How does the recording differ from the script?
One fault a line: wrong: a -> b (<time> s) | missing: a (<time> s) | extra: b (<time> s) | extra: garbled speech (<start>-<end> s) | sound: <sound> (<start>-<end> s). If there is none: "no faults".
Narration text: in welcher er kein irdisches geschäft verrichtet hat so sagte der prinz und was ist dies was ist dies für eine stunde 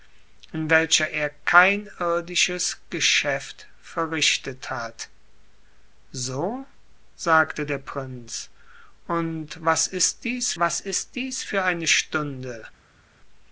no faults